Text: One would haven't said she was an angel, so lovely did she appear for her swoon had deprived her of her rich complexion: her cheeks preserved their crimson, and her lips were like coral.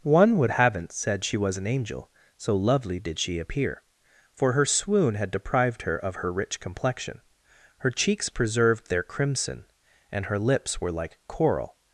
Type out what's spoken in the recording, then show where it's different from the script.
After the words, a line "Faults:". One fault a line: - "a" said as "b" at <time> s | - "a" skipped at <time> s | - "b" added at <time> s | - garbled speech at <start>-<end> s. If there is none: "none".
One would haven't said she was an angel, so lovely did she appear for her swoon had deprived her of her rich complexion: her cheeks preserved their crimson, and her lips were like coral.
Faults:
none